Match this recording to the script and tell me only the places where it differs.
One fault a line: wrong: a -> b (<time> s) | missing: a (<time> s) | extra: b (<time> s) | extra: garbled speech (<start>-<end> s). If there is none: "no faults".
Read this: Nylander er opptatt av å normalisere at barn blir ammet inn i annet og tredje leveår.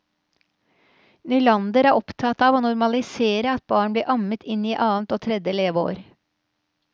no faults